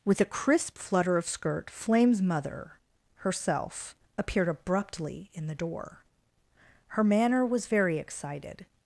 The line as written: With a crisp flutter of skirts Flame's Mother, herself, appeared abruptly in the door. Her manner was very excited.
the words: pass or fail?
fail